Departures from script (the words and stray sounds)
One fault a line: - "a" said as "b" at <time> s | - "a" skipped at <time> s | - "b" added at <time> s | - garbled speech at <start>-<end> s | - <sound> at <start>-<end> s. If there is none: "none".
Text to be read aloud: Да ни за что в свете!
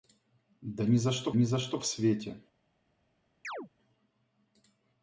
- "ни за что" added at 1.3 s
- chirp at 3.4-3.7 s